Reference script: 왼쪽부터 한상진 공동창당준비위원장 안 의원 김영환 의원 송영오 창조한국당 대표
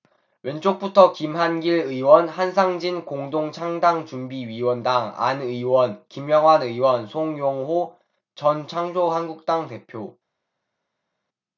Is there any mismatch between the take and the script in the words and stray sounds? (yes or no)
yes